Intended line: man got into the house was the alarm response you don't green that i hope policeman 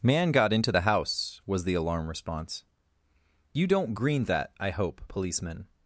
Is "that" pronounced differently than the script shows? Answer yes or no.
no